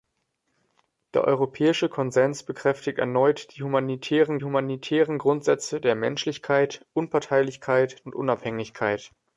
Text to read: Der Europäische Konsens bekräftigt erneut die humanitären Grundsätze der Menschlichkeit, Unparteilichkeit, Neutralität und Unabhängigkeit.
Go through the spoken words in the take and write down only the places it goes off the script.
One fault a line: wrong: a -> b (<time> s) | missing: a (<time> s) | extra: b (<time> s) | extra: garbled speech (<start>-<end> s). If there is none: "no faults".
extra: humanitären (4.4 s)
missing: Neutralität (8.0 s)